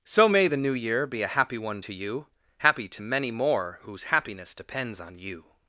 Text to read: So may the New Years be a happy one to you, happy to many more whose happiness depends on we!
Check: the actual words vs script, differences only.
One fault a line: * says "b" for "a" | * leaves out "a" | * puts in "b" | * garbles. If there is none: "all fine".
* says "Year" for "Years"
* says "you" for "we"